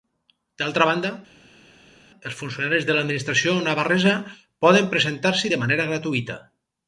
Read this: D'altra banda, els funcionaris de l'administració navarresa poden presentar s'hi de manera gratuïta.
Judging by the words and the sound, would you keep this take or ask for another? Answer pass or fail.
pass